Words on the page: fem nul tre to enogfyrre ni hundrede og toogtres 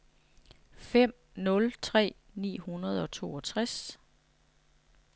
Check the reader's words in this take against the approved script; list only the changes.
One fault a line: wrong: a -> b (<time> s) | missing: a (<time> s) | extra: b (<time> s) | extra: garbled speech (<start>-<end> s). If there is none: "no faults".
missing: to enogfyrre (2.1 s)